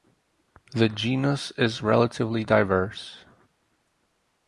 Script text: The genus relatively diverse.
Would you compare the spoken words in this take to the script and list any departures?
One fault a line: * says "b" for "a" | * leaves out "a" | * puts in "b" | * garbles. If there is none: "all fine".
* puts in "is"